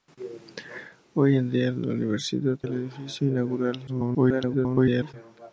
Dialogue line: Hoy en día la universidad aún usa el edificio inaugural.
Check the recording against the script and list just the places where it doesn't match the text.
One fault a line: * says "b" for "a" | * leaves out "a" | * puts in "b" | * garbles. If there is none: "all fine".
* leaves out "aún usa"
* garbles